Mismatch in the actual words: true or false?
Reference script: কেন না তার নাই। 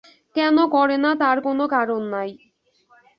true